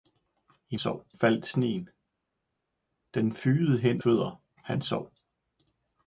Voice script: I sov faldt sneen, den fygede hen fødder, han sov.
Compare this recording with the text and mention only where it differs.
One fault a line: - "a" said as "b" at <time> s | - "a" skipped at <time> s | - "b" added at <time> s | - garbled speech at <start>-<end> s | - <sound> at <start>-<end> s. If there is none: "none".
none